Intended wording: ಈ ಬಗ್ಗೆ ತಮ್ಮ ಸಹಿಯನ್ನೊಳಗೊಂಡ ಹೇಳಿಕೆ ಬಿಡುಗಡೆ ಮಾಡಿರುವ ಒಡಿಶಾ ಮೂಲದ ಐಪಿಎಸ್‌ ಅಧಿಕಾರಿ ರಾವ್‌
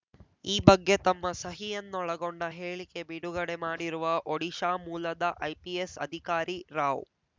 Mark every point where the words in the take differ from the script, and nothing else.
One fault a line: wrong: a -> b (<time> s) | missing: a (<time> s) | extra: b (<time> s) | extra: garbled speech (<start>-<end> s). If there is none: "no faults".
no faults